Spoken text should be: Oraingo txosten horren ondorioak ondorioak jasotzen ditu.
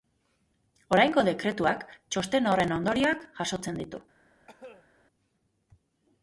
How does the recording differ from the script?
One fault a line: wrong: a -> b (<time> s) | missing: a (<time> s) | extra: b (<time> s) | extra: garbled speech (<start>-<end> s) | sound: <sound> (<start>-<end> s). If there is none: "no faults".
extra: dekretuak (1.3 s)
missing: ondorioak (3.3 s)
sound: cough (4.5-4.9 s)